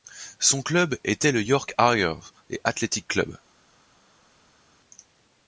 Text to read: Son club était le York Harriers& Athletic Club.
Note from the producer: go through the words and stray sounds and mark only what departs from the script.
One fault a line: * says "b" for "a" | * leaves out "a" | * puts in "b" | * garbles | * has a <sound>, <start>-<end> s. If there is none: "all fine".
all fine